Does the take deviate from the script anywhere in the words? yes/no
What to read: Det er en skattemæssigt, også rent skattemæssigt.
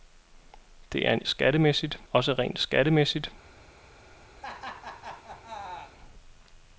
no